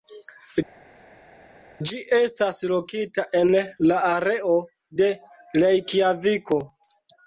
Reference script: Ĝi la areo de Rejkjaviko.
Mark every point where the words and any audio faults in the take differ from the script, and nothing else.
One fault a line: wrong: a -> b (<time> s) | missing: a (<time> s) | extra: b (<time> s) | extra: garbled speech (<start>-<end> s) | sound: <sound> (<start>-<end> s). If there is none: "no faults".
extra: estas lokita en (2.2 s)